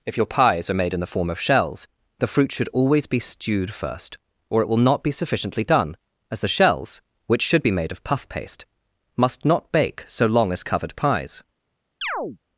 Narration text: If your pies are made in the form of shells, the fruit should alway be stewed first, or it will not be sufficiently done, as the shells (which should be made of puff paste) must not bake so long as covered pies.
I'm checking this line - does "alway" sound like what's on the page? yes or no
no